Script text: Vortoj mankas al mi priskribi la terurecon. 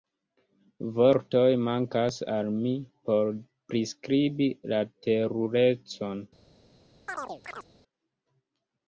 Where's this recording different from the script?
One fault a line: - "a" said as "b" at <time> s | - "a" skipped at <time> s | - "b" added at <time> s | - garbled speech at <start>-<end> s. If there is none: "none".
- "por" added at 3.1 s